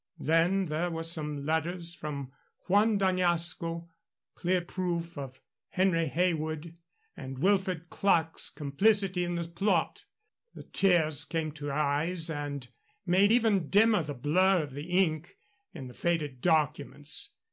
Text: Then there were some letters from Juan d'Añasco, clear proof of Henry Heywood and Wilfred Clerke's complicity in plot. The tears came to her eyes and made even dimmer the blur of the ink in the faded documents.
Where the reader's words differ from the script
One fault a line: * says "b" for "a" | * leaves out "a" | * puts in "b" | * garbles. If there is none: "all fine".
* puts in "the"